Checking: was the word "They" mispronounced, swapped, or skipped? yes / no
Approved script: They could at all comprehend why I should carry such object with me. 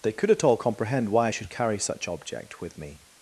no